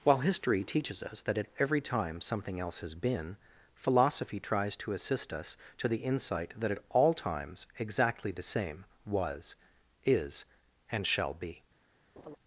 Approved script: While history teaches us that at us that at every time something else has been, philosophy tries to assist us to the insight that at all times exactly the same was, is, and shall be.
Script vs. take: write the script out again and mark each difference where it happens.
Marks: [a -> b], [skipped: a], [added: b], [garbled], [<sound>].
While history teaches us that at [skipped: us that at] every time something else has been, philosophy tries to assist us to the insight that at all times exactly the same was, is, and shall be. [laugh]